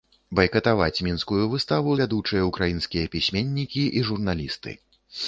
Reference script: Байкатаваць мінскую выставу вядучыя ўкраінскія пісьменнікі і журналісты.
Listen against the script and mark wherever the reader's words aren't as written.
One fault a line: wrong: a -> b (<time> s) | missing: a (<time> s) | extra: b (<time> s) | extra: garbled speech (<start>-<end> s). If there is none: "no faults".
no faults